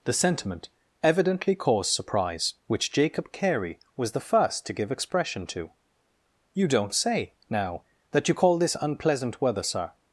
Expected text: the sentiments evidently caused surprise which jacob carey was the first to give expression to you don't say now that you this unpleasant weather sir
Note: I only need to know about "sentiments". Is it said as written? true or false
false